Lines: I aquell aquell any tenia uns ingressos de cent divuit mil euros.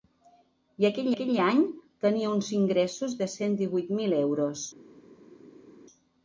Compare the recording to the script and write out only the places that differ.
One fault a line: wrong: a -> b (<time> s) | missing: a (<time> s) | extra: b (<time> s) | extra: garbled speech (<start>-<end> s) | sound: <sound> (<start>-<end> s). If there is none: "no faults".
no faults